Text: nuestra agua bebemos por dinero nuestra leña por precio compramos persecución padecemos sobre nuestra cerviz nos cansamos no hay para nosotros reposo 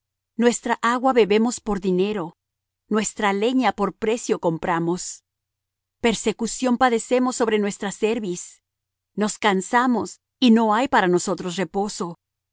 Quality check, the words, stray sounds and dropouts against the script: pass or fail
fail